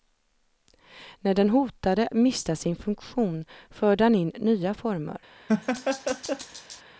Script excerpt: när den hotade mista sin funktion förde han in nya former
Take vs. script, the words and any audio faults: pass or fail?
fail